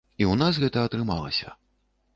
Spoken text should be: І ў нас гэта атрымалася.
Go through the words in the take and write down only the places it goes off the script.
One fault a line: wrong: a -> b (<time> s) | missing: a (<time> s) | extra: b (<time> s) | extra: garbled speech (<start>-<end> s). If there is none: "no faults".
no faults